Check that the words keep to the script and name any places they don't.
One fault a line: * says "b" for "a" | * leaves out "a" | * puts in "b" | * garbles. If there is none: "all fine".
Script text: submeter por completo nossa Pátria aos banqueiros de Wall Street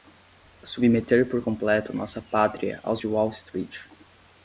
* leaves out "banqueiros"